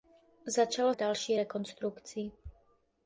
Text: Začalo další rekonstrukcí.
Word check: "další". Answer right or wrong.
right